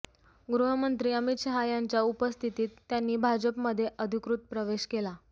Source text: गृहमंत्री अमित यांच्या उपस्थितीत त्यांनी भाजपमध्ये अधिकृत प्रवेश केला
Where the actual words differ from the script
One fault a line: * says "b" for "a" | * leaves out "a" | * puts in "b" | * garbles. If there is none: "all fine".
* puts in "शहा"